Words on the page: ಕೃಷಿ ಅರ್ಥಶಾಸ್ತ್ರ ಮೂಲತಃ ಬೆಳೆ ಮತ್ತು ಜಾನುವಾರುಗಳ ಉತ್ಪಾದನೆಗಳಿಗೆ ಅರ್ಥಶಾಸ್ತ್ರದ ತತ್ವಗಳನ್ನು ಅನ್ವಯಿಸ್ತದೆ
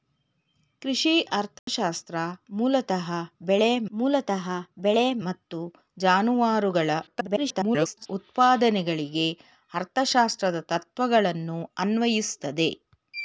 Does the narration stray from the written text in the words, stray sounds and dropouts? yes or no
yes